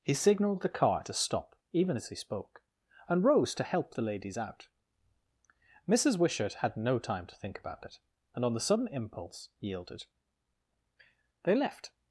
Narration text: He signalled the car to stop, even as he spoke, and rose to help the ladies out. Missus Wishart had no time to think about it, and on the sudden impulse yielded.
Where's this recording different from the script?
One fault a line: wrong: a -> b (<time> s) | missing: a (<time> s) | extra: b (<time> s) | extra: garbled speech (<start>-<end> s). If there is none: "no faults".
extra: They left (11.4 s)